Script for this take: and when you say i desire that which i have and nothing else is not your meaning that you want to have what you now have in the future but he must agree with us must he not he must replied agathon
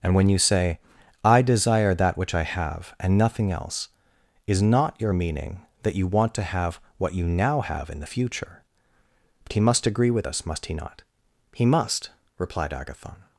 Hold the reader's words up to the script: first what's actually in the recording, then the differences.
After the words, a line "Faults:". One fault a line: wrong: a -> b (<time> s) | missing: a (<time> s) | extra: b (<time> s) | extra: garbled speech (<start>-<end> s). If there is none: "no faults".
and when you say i desire that which i have and nothing else is not your meaning that you want to have what you now have in the future but he must agree with us must he not he must replied agathon
Faults:
no faults